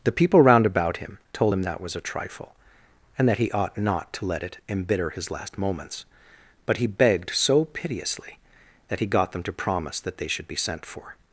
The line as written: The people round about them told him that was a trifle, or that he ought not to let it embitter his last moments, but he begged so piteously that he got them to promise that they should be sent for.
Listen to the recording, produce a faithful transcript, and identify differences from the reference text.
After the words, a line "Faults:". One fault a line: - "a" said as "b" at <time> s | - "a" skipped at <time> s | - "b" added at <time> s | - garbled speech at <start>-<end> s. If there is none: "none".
The people round about him told him that was a trifle, and that he ought not to let it embitter his last moments, but he begged so piteously that he got them to promise that they should be sent for.
Faults:
- "them" said as "him" at 1.0 s
- "or" said as "and" at 3.2 s